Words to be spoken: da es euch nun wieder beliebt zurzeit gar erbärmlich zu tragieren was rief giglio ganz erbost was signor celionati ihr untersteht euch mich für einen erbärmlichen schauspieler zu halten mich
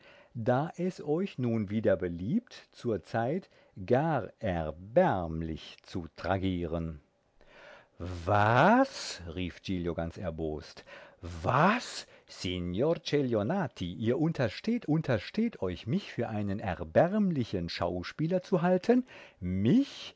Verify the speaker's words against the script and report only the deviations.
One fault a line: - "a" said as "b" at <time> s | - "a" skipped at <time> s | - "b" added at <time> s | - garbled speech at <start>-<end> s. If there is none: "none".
- "untersteht" added at 14.9 s